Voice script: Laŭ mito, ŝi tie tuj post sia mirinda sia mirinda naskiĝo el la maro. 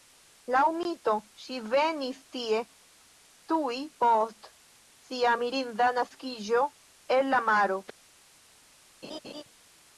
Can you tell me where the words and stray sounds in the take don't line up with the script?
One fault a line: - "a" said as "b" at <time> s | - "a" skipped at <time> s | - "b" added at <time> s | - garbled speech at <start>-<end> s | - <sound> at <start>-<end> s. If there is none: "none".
- "venis" added at 1.7 s
- "sia mirinda" skipped at 5.9 s
- laugh at 9.0-9.4 s